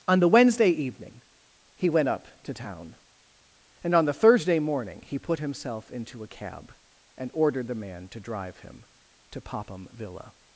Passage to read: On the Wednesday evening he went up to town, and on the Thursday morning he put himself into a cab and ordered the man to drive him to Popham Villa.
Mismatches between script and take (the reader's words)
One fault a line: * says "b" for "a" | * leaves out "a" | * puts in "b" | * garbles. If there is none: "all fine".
all fine